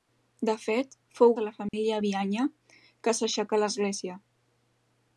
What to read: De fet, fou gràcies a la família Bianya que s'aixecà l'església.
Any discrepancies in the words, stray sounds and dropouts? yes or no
yes